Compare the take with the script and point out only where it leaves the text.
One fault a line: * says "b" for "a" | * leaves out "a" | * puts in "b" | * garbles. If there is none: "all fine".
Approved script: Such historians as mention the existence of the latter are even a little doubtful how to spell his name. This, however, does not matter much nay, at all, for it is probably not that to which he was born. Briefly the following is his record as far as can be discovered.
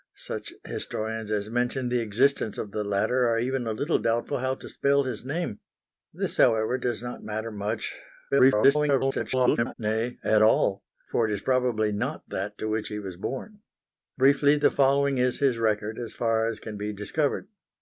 * garbles